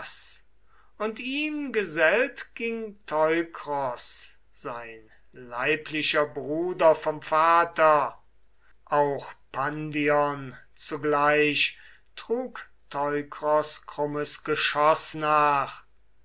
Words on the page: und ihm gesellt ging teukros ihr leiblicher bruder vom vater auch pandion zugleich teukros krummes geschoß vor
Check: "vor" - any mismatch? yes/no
yes